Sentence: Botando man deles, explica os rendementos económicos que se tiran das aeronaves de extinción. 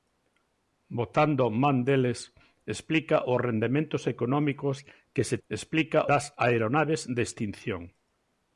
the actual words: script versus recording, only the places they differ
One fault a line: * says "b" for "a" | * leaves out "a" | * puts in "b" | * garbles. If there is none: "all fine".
* says "explica" for "tiran"